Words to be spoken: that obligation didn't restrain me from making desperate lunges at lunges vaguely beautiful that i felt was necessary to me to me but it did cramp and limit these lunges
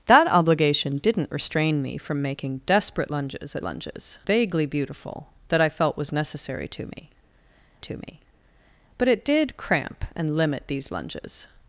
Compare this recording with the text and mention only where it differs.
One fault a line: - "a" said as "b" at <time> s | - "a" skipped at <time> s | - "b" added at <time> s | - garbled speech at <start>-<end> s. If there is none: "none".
none